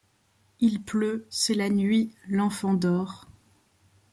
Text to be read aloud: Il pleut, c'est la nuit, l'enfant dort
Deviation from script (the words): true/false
false